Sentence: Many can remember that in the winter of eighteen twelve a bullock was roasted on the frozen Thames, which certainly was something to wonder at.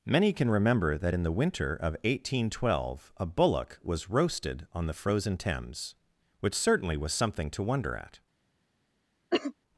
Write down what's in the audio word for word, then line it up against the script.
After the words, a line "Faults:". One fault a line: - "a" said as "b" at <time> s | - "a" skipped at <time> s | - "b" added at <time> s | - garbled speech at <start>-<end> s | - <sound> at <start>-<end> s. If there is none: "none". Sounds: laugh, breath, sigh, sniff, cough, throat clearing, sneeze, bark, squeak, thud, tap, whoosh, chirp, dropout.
Many can remember that in the winter of eighteen twelve a bullock was roasted on the frozen Thames, which certainly was something to wonder at.
Faults:
- cough at 9.3-9.5 s